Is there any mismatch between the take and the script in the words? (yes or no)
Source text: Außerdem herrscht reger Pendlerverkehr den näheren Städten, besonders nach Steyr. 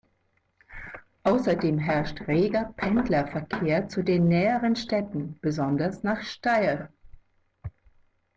yes